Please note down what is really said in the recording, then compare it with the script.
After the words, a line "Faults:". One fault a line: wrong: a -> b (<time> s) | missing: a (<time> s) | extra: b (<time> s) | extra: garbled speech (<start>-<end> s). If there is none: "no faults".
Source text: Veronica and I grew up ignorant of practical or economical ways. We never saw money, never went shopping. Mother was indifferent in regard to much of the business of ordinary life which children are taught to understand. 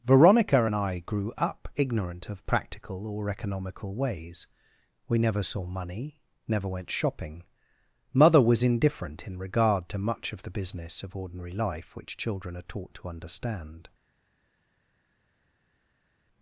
Veronica and I grew up ignorant of practical or economical ways. We never saw money, never went shopping. Mother was indifferent in regard to much of the business of ordinary life which children are taught to understand.
Faults:
no faults